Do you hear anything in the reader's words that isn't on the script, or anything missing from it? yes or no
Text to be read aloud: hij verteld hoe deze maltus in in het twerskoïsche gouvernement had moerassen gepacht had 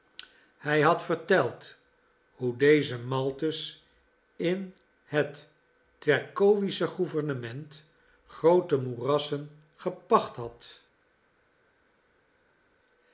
yes